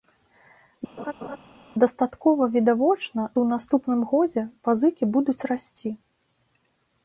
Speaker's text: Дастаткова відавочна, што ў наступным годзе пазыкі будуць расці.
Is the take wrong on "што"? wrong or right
wrong